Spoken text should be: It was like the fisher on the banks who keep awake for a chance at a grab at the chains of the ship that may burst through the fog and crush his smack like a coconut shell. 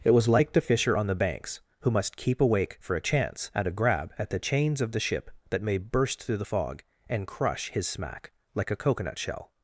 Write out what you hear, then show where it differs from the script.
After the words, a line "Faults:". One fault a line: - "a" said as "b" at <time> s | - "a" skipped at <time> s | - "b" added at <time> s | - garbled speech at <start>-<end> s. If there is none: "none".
It was like the fisher on the banks who must keep awake for a chance at a grab at the chains of the ship that may burst through the fog and crush his smack like a coconut shell.
Faults:
- "must" added at 1.9 s